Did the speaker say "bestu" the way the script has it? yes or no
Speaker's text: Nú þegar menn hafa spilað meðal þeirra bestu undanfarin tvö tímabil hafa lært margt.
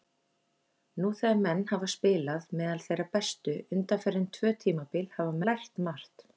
yes